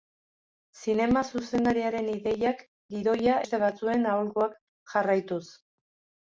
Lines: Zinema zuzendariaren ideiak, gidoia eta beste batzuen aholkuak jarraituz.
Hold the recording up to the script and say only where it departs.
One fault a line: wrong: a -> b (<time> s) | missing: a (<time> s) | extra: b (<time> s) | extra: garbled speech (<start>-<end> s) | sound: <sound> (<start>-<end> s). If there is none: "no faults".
missing: eta (3.4 s)